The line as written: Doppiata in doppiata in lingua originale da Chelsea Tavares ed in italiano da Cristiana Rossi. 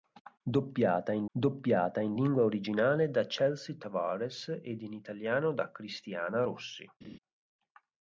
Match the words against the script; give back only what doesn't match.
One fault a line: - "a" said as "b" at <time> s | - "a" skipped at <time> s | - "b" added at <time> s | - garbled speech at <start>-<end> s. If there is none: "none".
none